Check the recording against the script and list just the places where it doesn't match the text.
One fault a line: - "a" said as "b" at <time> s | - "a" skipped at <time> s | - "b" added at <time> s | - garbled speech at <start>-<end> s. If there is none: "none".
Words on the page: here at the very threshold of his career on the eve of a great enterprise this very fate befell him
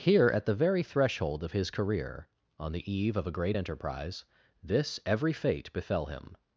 - "very" said as "every" at 5.1 s